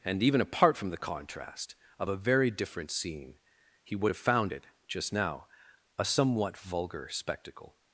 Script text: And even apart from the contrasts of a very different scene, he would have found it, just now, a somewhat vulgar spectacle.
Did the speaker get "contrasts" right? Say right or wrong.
wrong